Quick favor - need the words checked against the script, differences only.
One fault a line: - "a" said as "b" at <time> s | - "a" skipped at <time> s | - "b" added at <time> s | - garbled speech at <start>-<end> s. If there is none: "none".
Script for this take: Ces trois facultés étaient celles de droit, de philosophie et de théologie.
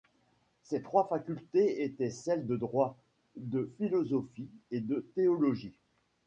none